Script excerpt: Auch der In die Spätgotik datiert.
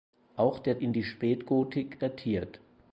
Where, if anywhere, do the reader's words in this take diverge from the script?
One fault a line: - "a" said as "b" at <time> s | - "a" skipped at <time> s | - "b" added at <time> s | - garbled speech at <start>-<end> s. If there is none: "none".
none